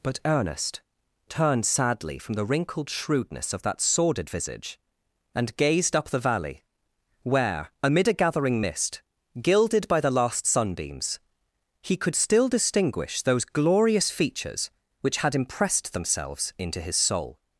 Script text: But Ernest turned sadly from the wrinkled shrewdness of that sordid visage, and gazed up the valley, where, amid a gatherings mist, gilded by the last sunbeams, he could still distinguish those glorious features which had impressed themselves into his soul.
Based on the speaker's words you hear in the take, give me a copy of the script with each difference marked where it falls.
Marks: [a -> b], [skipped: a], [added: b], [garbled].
But Ernest turned sadly from the wrinkled shrewdness of that sordid visage, and gazed up the valley, where, amid a [gatherings -> gathering] mist, gilded by the last sunbeams, he could still distinguish those glorious features which had impressed themselves into his soul.